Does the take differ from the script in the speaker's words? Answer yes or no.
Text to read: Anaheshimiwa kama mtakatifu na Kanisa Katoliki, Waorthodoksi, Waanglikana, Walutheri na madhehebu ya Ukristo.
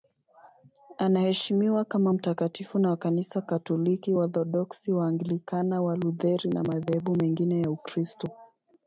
yes